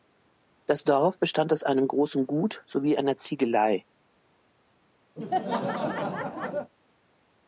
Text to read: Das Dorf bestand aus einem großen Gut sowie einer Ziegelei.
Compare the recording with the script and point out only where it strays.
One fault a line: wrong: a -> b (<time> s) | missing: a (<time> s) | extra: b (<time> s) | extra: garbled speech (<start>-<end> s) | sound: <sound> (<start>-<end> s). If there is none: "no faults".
sound: laugh (5.2-6.7 s)